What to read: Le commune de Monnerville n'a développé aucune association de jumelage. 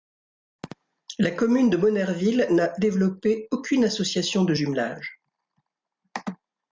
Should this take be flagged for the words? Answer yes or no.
yes